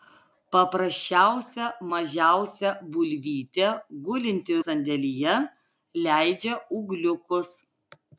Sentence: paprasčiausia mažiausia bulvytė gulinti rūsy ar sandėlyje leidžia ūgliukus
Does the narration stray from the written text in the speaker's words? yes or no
yes